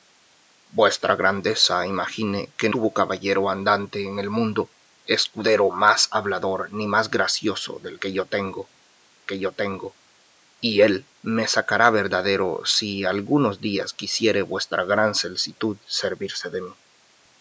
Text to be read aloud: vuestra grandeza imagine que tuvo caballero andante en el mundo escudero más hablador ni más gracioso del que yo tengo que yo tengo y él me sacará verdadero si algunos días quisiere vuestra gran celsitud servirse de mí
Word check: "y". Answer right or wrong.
right